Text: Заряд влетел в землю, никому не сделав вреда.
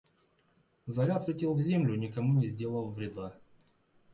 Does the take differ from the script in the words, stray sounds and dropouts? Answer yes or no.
no